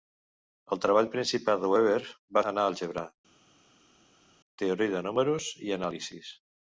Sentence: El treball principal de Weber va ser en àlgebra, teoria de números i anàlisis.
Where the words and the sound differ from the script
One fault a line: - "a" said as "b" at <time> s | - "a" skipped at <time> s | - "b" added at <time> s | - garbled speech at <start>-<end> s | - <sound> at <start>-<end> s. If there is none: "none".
- "ser" skipped at 2.4 s